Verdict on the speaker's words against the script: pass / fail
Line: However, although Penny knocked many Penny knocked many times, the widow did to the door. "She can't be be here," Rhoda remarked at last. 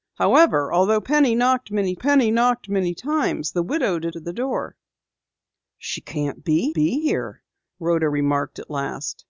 pass